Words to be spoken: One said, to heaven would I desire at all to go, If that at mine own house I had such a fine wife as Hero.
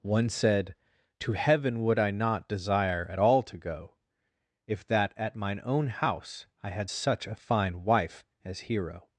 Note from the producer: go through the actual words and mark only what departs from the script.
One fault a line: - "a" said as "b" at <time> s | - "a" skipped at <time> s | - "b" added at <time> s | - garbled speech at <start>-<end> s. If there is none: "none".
- "not" added at 2.1 s